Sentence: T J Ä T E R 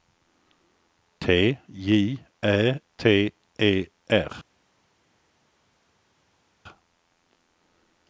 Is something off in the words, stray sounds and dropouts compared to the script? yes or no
no